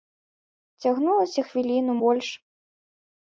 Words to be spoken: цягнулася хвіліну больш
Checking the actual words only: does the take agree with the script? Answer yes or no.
yes